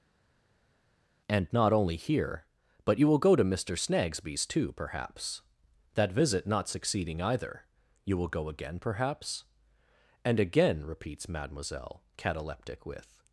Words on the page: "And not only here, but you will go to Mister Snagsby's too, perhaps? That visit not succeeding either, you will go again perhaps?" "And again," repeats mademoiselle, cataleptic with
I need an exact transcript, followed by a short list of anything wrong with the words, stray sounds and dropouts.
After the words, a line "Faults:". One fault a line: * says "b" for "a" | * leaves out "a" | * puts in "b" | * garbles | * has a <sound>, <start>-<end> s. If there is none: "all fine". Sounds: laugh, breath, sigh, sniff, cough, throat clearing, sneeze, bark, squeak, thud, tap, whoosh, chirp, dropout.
"And not only here, but you will go to Mister Snagsby's too, perhaps? That visit not succeeding either, you will go again perhaps?" "And again," repeats mademoiselle, cataleptic with
Faults:
all fine